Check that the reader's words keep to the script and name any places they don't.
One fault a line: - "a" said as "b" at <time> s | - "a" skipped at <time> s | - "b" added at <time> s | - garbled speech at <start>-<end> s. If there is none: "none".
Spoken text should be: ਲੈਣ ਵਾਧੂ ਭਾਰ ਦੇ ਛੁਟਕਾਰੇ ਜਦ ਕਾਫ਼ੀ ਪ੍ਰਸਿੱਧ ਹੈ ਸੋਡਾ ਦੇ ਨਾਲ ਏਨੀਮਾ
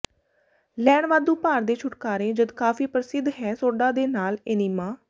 none